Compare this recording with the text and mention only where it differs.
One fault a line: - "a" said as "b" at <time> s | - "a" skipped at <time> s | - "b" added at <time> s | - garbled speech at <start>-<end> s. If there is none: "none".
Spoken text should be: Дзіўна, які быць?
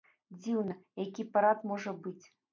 - "парад можа" added at 1.4 s